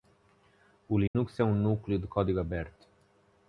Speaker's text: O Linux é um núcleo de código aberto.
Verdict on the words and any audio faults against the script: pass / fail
fail